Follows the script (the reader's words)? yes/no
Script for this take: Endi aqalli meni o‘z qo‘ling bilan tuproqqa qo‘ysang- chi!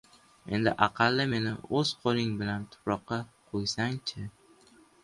yes